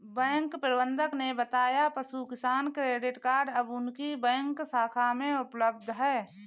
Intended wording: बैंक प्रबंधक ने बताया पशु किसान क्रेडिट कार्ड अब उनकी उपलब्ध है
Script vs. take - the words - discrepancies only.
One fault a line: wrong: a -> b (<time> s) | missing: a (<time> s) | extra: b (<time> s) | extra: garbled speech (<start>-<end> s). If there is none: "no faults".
extra: बैंक शाखा में (4.2 s)